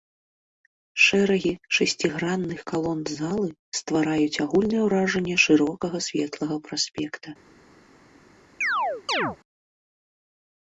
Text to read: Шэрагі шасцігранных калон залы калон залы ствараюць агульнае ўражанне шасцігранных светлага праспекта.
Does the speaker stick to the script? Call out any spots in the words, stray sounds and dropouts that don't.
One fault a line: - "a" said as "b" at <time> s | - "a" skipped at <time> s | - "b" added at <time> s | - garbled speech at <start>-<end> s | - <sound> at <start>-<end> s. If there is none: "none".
- "калон залы" skipped at 3.5 s
- "шасцігранных" said as "шырокага" at 5.5 s
- chirp at 8.6-9.4 s